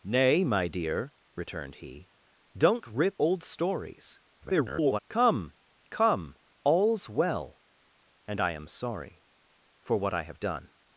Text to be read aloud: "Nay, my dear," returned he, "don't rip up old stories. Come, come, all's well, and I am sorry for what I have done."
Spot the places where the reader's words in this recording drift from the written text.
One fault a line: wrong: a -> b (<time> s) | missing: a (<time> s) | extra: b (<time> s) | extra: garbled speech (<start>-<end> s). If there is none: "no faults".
missing: up (3.2 s)
extra: garbled speech (4.4-5.0 s)